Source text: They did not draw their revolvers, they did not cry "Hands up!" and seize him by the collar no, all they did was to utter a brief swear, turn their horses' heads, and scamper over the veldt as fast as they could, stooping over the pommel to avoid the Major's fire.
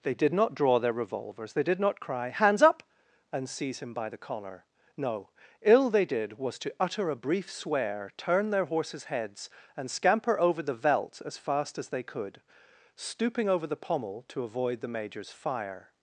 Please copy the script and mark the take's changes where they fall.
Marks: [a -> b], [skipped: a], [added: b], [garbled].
They did not draw their revolvers, they did not cry "Hands up!" and seize him by the collar no, [all -> ill] they did was to utter a brief swear, turn their horses' heads, and scamper over the veldt as fast as they could, stooping over the pommel to avoid the Major's fire.